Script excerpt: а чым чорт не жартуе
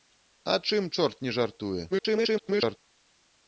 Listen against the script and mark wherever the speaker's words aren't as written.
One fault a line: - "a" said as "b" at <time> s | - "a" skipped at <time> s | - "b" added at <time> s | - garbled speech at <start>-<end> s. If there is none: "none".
- garbled speech at 1.9-2.8 s